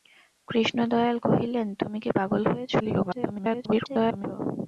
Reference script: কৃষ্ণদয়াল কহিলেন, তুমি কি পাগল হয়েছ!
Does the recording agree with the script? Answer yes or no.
no